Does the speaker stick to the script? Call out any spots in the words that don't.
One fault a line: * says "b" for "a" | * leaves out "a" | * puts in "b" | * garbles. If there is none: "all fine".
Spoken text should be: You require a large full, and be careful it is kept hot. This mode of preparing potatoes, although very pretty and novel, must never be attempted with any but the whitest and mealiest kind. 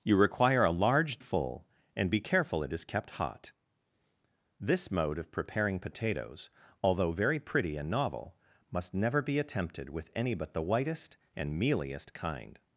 all fine